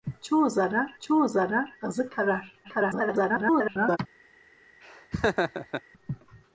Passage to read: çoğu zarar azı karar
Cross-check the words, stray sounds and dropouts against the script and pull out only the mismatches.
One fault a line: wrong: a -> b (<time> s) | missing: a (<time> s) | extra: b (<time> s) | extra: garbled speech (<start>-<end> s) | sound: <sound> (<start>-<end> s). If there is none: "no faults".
extra: çoğu zarar (1.0 s)
extra: garbled speech (2.6-4.0 s)
sound: laugh (4.8-5.8 s)